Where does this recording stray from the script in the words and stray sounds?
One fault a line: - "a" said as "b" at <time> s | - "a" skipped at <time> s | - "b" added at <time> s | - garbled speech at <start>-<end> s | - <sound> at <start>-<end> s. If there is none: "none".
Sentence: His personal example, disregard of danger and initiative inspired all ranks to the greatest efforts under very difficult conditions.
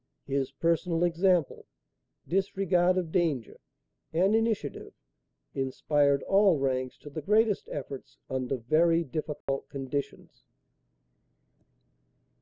- dropout at 9.4-9.5 s